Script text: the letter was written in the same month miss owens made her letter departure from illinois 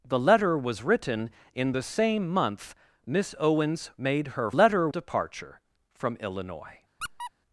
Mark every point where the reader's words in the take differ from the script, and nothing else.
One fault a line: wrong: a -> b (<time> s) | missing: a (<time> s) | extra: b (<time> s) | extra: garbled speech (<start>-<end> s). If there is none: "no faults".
no faults